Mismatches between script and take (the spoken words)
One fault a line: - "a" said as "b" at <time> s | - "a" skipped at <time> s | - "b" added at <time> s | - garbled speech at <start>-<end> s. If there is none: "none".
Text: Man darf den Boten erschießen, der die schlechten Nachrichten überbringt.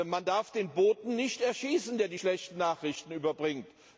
- "nicht" added at 1.2 s